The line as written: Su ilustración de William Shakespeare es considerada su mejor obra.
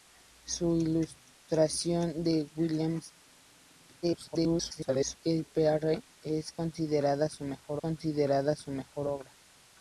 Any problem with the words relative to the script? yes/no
yes